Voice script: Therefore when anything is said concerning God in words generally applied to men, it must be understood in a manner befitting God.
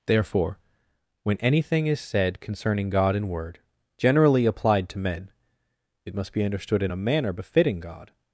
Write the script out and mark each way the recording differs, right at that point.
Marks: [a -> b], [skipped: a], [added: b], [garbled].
Therefore when anything is said concerning God in [words -> word] generally applied to men, it must be understood in a manner befitting God.